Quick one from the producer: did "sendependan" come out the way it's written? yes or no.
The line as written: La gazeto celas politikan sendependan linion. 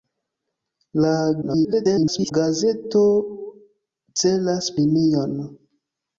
no